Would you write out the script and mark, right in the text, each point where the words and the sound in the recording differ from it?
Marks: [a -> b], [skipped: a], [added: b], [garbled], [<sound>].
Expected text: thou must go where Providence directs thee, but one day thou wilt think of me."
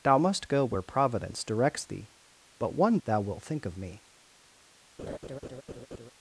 thou must go where Providence directs thee, but one [skipped: day] thou wilt think of me." [laugh]